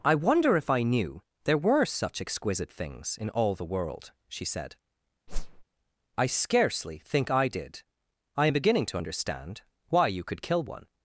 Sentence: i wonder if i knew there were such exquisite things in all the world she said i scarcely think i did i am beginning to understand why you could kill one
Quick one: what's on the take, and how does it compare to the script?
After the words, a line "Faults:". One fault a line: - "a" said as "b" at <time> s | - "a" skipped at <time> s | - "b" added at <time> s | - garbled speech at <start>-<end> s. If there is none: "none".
i wonder if i knew there were such exquisite things in all the world she said i scarcely think i did i am beginning to understand why you could kill one
Faults:
none